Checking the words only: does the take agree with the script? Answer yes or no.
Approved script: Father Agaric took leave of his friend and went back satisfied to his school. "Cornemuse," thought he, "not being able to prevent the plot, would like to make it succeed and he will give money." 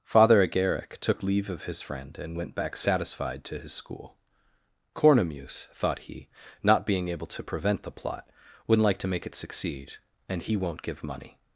no